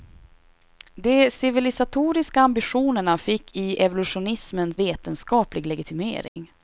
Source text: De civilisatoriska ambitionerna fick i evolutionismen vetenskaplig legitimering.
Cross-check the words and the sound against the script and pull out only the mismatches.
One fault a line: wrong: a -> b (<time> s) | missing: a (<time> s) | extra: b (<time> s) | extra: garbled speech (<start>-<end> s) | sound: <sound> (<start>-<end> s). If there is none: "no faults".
sound: dropout (6.3-6.4 s)